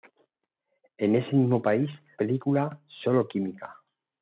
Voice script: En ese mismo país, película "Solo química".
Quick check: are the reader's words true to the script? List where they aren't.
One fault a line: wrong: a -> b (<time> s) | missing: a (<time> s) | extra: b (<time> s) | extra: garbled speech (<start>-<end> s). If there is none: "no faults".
no faults